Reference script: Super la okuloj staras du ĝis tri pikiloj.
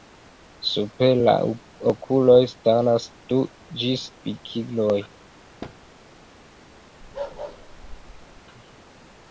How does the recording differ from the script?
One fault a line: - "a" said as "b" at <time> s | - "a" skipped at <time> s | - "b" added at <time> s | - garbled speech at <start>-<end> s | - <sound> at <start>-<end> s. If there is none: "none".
- "tri" skipped at 4.1 s
- thud at 5.6-5.8 s
- bark at 7.0-8.4 s